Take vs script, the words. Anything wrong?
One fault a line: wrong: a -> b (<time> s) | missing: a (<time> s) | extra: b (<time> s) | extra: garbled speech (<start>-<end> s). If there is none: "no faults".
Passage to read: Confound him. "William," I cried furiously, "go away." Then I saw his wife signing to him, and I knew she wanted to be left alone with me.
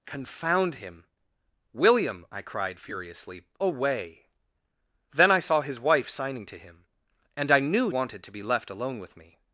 missing: go (3.5 s)
missing: she (7.9 s)